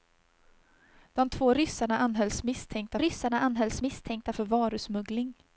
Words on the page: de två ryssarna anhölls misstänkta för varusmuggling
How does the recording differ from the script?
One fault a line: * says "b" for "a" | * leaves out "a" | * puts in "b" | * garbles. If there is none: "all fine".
* puts in "ryssarna anhölls misstänkta"